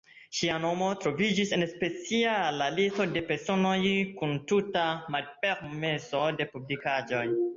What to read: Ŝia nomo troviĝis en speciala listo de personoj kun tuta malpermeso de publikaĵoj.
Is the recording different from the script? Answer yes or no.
no